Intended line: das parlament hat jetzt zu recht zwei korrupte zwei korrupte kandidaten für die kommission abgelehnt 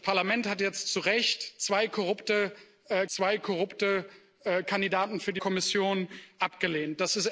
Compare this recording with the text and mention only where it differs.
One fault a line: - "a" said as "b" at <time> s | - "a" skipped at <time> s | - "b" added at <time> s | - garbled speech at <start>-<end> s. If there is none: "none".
none